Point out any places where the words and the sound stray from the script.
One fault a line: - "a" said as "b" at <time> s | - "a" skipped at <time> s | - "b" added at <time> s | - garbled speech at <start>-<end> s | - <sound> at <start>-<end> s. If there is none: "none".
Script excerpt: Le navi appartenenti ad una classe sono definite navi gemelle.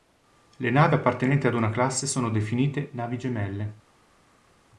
none